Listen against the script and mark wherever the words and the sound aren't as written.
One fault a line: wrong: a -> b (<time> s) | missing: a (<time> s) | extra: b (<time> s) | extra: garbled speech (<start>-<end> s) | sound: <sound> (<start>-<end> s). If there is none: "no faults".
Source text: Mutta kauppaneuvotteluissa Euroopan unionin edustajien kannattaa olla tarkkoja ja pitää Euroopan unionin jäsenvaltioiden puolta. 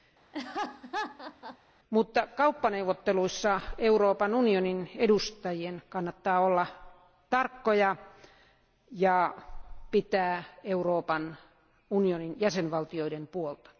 sound: laugh (0.3-1.6 s)